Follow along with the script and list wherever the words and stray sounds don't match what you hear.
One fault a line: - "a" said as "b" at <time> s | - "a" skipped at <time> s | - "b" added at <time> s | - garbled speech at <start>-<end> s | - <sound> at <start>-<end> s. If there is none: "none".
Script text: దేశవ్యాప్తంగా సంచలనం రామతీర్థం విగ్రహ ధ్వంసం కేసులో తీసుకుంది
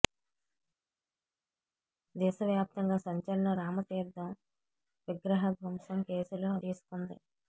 none